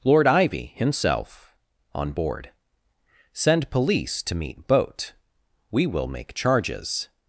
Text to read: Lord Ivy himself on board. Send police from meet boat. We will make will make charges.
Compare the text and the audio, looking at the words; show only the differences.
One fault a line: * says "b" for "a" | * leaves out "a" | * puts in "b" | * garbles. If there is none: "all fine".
* says "to" for "from"
* leaves out "will make"